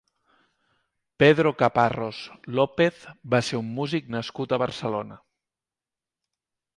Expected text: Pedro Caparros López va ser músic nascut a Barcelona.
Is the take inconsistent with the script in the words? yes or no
yes